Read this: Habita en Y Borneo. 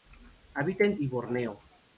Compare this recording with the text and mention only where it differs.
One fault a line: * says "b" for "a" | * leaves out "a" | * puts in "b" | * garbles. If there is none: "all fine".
all fine